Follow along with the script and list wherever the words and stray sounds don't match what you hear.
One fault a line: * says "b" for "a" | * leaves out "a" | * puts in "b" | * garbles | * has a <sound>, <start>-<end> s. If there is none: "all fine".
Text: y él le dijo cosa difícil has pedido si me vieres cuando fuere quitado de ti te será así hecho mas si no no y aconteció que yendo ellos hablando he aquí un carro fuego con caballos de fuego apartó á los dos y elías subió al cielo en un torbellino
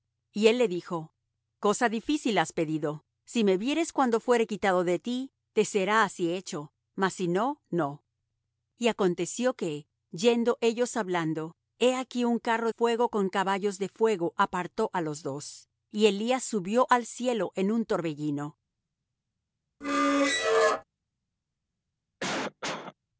* has a squeak, 19.8-20.8 s
* has a cough, 22.2-22.9 s